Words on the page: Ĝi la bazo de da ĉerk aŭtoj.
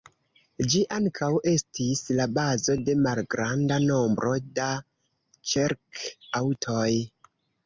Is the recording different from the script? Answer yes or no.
yes